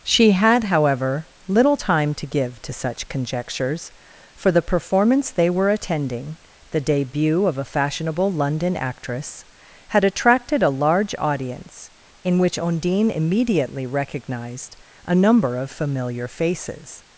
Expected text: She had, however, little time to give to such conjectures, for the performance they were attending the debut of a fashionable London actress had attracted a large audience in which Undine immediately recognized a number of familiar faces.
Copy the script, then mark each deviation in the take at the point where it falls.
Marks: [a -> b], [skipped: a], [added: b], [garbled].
She had, however, little time to give to such conjectures, for the performance they were attending the debut of a fashionable London actress had attracted a large audience in which Undine immediately recognized a number of familiar faces.